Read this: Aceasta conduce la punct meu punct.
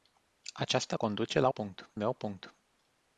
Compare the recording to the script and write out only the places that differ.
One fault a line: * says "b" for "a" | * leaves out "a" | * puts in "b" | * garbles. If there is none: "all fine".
all fine